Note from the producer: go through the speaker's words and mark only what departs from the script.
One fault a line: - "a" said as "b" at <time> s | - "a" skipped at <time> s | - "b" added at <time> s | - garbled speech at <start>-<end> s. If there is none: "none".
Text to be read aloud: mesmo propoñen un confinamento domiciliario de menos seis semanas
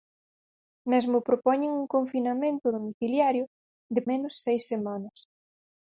none